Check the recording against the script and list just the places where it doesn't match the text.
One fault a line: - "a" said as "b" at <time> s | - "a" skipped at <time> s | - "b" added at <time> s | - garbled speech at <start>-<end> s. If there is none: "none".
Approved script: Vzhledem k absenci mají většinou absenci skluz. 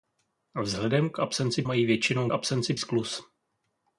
none